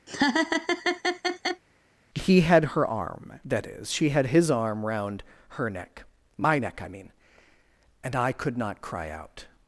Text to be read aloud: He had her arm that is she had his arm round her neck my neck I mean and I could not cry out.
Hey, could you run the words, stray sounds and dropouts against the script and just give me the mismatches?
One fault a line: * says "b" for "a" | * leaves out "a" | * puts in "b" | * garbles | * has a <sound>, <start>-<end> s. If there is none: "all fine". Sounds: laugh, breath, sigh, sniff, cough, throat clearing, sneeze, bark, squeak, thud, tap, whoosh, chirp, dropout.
* has a laugh, 0.1-1.6 s